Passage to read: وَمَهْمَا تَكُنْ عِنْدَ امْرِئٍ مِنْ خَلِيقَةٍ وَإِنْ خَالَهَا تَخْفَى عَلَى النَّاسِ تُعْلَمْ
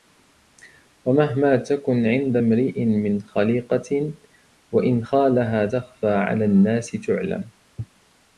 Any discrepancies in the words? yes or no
no